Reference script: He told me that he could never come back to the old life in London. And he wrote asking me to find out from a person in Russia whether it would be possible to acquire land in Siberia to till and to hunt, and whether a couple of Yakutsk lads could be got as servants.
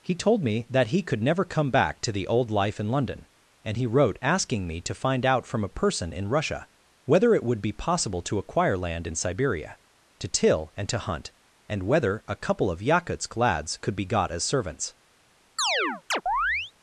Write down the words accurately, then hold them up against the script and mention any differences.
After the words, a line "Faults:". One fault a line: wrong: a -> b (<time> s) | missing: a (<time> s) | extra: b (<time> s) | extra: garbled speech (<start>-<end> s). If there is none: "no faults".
He told me that he could never come back to the old life in London. And he wrote asking me to find out from a person in Russia whether it would be possible to acquire land in Siberia to till and to hunt, and whether a couple of Yakutsk lads could be got as servants.
Faults:
no faults